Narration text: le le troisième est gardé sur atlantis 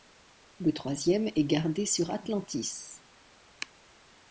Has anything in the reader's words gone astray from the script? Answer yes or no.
yes